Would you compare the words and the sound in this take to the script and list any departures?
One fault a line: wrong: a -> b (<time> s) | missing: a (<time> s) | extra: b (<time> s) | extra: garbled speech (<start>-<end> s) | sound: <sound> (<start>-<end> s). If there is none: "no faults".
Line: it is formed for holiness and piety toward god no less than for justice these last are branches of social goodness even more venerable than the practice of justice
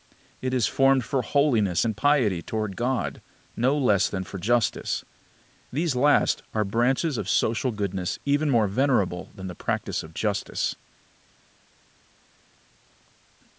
no faults